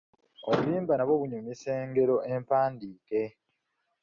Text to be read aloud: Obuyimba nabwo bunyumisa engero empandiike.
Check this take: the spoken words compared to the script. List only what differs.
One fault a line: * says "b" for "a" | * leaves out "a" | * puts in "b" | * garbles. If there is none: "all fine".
all fine